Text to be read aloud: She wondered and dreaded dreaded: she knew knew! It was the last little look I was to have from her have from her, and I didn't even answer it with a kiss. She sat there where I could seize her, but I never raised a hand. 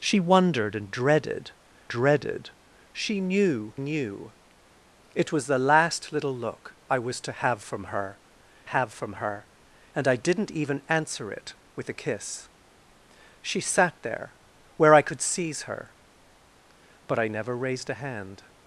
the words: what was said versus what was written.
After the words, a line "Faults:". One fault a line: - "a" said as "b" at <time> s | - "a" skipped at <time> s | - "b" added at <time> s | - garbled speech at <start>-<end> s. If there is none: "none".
She wondered and dreaded dreaded: she knew knew! It was the last little look I was to have from her have from her, and I didn't even answer it with a kiss. She sat there where I could seize her, but I never raised a hand.
Faults:
none